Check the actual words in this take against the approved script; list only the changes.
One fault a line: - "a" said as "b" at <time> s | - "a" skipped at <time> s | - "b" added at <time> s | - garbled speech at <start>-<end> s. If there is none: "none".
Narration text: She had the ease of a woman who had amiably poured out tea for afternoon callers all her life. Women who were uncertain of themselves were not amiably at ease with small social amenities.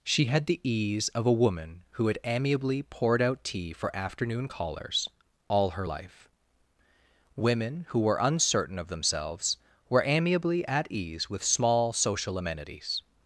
- "not" skipped at 10.0 s